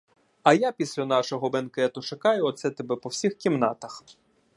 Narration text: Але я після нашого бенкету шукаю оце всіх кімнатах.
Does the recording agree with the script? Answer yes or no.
no